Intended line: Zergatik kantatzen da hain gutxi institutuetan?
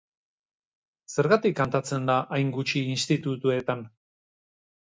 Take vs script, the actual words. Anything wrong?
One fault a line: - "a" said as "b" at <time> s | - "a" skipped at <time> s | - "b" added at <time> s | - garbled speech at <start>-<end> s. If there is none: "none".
none